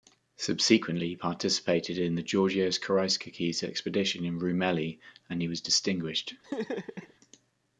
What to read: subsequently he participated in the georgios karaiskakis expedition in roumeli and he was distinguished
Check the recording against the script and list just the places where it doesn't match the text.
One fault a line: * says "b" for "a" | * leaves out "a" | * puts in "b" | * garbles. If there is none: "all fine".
all fine